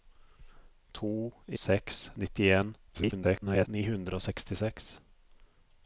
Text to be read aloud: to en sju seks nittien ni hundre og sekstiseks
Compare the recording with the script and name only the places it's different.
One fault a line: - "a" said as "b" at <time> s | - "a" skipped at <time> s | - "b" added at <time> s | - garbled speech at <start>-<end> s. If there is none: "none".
- "en sju" skipped at 1.1 s
- garbled speech at 2.9-3.7 s